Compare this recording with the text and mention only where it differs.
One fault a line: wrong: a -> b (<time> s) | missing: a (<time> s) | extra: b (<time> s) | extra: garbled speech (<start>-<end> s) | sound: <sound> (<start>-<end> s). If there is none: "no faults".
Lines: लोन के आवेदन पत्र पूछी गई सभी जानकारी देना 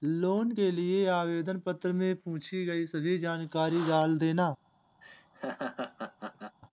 extra: लिए (0.7 s)
extra: में (1.9 s)
extra: डाल (3.9 s)
sound: laugh (5.0-6.6 s)